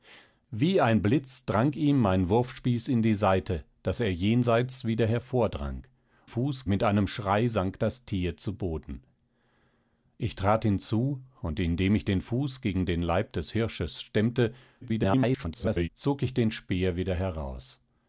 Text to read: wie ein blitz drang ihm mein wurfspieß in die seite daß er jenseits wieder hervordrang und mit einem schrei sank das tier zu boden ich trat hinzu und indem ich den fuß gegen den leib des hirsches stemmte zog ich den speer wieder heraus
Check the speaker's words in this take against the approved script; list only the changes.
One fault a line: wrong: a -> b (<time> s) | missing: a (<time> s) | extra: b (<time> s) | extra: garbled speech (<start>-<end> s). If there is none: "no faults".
wrong: und -> fuß (6.2 s)
extra: garbled speech (14.8-15.9 s)